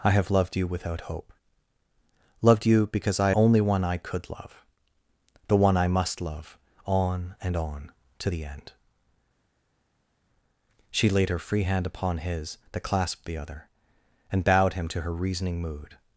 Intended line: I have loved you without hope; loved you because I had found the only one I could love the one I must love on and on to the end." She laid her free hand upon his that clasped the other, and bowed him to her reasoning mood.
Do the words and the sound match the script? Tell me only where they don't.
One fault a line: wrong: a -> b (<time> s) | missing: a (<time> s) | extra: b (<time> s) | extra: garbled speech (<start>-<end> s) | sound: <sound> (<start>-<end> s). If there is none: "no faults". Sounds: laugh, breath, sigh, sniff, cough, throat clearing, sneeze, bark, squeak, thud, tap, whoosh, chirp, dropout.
missing: had found the (3.3 s)